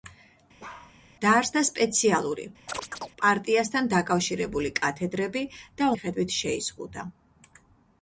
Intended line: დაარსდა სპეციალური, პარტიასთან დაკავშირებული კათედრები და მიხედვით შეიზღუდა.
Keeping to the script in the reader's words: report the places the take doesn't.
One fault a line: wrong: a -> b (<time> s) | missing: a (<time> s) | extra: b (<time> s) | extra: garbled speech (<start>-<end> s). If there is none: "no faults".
no faults